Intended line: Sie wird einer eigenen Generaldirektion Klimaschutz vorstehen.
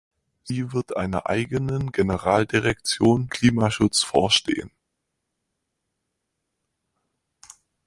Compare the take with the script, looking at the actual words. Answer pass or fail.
pass